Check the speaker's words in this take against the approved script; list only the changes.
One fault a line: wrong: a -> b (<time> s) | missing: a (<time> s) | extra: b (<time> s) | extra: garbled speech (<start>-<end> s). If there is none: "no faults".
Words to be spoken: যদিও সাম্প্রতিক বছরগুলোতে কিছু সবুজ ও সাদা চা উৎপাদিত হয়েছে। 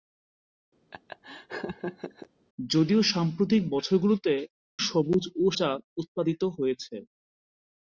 missing: কিছু (4.3 s)
missing: সাদা (5.6 s)